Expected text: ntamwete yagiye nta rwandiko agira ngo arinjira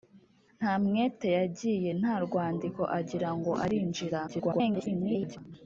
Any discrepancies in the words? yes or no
yes